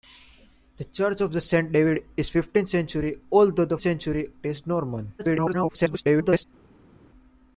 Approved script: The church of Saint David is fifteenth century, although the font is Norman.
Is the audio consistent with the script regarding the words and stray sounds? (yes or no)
no